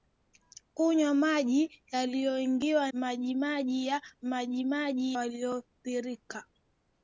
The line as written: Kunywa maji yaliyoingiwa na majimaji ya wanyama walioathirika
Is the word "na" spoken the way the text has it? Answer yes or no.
no